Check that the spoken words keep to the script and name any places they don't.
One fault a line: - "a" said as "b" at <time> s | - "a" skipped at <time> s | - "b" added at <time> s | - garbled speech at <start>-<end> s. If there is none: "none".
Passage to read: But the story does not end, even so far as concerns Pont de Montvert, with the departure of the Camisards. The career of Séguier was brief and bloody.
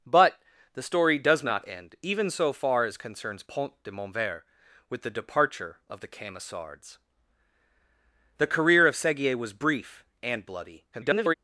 - garbled speech at 10.9-11.3 s